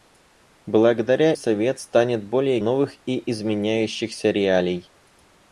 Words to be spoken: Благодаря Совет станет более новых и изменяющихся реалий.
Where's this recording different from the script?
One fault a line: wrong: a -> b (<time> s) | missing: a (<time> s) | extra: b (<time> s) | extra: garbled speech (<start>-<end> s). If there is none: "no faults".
no faults